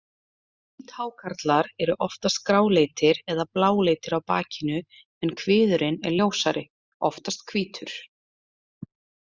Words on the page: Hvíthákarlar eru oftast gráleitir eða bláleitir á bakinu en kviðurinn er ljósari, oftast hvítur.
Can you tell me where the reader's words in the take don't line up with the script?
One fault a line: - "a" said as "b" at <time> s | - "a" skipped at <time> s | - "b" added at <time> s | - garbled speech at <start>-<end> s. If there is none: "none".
none